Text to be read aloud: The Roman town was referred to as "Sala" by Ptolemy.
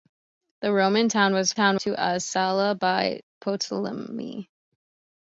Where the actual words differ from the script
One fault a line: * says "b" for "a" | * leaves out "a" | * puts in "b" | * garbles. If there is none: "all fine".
* says "town" for "referred"